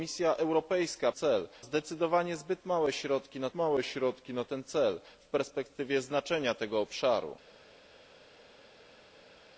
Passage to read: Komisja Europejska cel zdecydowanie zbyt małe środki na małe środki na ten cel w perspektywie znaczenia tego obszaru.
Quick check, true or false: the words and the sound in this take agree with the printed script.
true